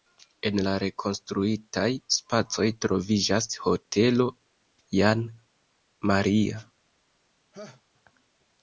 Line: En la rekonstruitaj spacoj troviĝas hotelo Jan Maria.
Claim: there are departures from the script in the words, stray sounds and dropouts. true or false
true